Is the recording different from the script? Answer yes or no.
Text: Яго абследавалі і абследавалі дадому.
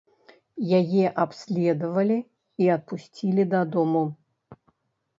yes